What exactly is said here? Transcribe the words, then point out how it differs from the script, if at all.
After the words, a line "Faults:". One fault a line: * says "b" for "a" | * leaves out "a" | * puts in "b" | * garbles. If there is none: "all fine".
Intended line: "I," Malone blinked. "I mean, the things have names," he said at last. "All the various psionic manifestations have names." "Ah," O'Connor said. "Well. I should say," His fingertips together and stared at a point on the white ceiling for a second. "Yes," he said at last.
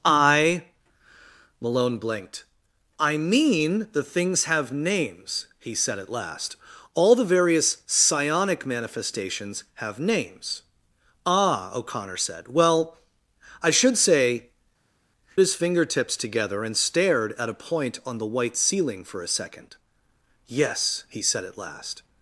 "I," Malone blinked. "I mean, the things have names," he said at last. "All the various psionic manifestations have names." "Ah," O'Connor said. "Well. I should say," His fingertips together and stared at a point on the white ceiling for a second. "Yes," he said at last.
Faults:
all fine